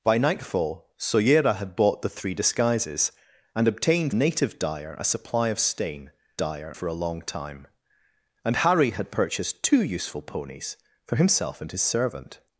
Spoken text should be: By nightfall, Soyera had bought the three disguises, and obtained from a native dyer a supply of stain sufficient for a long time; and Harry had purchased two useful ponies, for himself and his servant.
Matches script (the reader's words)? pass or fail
fail